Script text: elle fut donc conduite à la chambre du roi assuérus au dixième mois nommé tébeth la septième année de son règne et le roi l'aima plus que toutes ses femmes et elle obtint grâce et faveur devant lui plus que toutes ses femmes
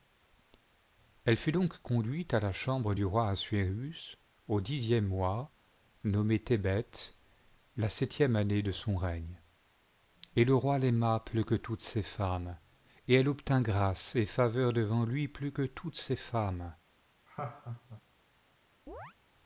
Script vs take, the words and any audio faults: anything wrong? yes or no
yes